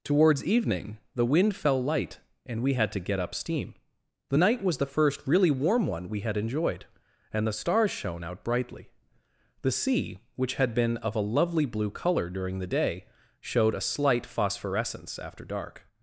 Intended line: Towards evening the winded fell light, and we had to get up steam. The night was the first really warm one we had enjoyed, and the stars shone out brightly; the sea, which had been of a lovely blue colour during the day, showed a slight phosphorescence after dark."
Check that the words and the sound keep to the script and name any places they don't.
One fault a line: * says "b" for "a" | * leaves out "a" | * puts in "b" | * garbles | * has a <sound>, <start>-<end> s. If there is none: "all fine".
* says "wind" for "winded"